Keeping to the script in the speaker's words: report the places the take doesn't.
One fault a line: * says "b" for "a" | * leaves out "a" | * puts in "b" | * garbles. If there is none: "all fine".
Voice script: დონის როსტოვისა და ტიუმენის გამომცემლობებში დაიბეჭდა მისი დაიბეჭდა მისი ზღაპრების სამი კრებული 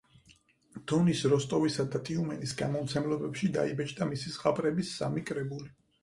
* leaves out "დაიბეჭდა მისი"